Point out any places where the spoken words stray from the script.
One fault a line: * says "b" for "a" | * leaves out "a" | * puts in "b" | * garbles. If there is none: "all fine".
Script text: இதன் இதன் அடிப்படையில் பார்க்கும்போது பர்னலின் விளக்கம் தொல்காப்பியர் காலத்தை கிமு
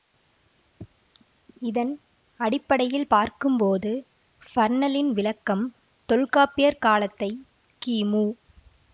* leaves out "இதன்"